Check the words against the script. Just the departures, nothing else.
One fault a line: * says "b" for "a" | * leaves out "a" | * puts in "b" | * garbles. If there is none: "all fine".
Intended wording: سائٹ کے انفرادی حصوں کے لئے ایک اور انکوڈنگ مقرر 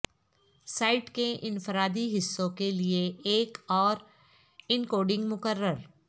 all fine